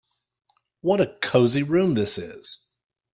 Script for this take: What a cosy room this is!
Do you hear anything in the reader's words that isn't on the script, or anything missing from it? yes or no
no